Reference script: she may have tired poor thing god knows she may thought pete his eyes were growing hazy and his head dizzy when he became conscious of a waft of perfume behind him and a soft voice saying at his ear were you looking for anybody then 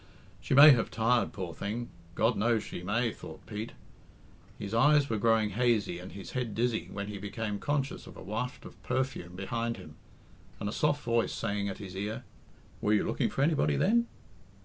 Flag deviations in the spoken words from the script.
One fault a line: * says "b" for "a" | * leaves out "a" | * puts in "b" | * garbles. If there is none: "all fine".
all fine